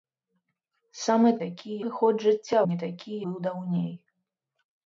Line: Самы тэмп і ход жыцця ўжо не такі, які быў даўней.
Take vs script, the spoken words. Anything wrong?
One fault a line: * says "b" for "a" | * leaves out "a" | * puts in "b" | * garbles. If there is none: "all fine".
* says "такі" for "тэмп"
* leaves out "ўжо"
* leaves out "які"